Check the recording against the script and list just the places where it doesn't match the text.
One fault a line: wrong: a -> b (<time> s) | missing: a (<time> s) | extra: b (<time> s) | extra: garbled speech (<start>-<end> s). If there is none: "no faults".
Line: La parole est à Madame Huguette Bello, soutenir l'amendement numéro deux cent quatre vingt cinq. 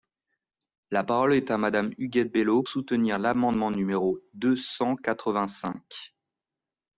no faults